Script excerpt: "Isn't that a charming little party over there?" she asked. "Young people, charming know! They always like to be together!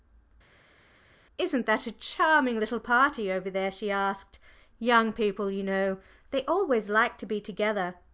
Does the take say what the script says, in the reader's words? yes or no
no